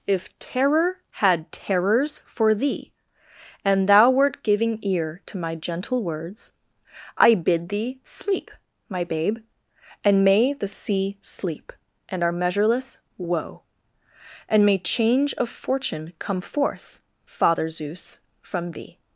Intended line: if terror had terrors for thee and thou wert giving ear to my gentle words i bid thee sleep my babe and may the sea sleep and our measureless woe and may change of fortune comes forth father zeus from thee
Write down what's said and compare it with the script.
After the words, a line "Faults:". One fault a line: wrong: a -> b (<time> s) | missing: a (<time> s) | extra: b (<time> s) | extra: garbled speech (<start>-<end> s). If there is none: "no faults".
if terror had terrors for thee and thou wert giving ear to my gentle words i bid thee sleep my babe and may the sea sleep and our measureless woe and may change of fortune come forth father zeus from thee
Faults:
wrong: comes -> come (16.2 s)